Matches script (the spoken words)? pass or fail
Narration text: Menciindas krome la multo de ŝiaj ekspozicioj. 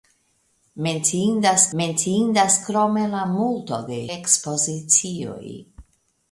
fail